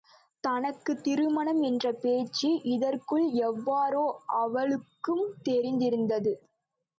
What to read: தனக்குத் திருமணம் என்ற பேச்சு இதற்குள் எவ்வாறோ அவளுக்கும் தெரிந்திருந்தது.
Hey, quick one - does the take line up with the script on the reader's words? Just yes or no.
yes